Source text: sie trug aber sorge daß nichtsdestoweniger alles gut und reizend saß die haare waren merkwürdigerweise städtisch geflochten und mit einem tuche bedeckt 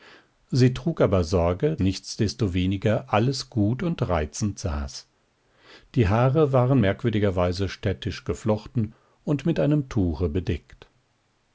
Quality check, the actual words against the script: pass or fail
fail